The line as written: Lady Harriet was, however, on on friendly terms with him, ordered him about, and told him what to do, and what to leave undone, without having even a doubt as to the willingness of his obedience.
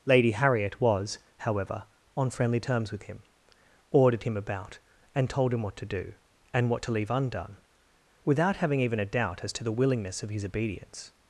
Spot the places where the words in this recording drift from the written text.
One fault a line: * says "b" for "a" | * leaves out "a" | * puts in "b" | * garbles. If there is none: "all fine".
* leaves out "on"